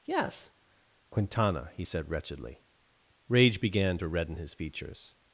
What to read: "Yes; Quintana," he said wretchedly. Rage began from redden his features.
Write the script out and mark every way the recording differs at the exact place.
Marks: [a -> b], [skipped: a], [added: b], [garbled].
"Yes; Quintana," he said wretchedly. Rage began [from -> to] redden his features.